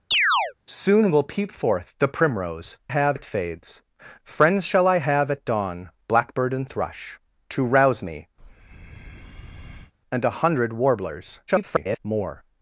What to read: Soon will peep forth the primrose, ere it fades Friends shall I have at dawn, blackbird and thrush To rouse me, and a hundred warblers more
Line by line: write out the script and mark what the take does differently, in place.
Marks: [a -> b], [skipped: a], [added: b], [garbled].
Soon will peep forth the primrose, [ere -> have] it fades Friends shall I have at dawn, blackbird and thrush To rouse me, and a hundred warblers [garbled] more